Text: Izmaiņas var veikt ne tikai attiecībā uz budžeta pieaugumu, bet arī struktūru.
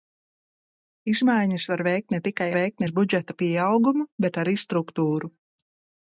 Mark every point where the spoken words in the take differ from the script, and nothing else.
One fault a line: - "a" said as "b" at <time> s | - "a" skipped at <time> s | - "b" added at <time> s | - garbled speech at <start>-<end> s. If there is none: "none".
- "attiecībā" said as "veikt" at 2.6 s